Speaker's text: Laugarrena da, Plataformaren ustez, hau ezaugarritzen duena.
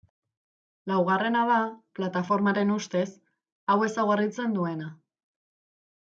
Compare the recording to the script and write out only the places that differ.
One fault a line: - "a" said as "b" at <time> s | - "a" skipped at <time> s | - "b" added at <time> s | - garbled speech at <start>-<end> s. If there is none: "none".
none